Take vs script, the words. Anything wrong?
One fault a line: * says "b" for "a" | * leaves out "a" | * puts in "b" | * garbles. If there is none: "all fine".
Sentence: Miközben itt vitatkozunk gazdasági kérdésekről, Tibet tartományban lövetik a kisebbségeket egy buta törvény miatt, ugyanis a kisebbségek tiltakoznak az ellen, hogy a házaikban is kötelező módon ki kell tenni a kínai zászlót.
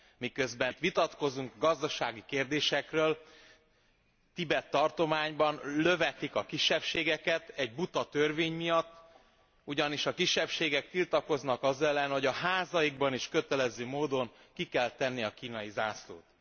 all fine